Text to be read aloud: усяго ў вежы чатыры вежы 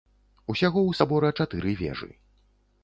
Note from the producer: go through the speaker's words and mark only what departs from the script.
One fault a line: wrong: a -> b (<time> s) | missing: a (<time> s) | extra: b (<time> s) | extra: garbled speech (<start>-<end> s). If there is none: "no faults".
wrong: вежы -> сабора (1.0 s)